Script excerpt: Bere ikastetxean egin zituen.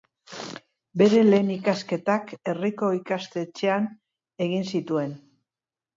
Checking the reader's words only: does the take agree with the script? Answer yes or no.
no